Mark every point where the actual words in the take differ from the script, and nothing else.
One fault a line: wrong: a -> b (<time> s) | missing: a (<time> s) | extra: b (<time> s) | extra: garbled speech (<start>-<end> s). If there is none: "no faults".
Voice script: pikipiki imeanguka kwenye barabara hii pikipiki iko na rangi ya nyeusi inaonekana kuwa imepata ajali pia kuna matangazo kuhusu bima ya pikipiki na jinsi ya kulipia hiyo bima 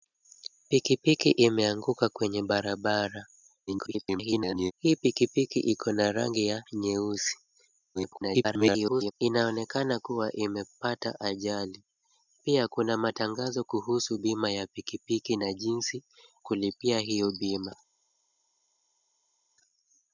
extra: garbled speech (3.7-4.7 s)
extra: garbled speech (7.9-9.1 s)
missing: ya (16.0 s)